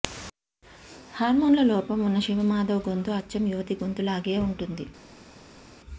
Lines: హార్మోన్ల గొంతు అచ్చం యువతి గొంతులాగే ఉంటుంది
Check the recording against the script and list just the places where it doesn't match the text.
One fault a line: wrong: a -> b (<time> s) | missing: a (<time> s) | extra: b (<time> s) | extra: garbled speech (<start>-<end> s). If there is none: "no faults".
extra: లోపం ఉన్న శివమాధవ్ (1.6 s)